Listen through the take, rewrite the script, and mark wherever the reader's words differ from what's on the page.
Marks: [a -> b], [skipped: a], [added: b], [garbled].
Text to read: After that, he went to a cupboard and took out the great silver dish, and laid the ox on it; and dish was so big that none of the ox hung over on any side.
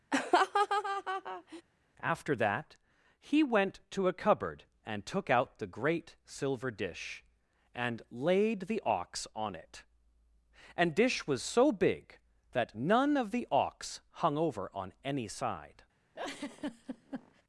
After that, he went to a cupboard and took out the great silver dish, and laid the ox on it; and dish was so big that none of the ox hung over on any side.